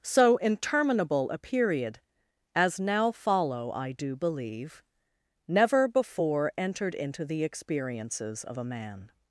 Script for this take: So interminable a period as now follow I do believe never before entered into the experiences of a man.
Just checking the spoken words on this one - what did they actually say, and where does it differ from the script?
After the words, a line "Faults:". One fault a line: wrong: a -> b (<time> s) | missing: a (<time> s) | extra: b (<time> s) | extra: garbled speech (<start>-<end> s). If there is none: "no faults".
So interminable a period as now follow I do believe never before entered into the experiences of a man.
Faults:
no faults